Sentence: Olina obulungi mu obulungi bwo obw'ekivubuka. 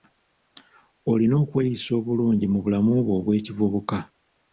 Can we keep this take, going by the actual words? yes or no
no